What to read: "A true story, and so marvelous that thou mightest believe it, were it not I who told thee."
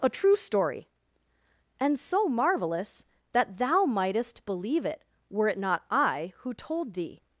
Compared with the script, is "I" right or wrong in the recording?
right